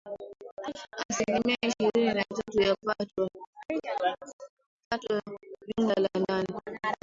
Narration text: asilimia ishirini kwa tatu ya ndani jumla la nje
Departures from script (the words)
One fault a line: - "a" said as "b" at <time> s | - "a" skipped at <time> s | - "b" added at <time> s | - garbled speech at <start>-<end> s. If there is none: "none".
- "kwa" said as "na" at 2.1 s
- "ndani" said as "pato" at 2.8 s
- "nje" said as "ndani" at 6.2 s